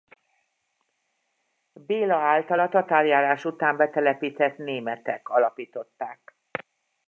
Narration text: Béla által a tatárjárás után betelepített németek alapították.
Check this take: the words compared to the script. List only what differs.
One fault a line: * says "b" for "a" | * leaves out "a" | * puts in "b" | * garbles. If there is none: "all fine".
all fine